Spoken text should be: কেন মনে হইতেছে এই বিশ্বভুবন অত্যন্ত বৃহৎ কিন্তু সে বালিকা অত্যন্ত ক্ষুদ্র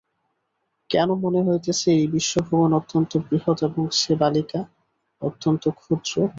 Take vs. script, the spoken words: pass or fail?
fail